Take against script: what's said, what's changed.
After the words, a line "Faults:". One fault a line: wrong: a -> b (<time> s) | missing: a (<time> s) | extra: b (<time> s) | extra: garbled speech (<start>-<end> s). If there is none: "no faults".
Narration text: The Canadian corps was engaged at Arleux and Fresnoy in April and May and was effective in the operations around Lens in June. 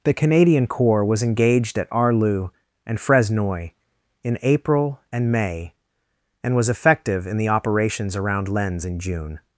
The Canadian corps was engaged at Arleux and Fresnoy in April and May and was effective in the operations around Lens in June.
Faults:
no faults